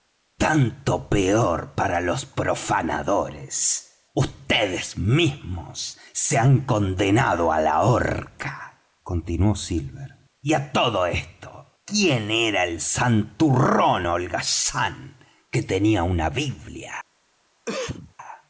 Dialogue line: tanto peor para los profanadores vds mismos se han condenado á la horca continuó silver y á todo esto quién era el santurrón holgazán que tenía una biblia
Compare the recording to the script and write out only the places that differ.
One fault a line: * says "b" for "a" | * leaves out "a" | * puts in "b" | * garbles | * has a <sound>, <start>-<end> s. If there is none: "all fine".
* has a cough, 17.7-18.1 s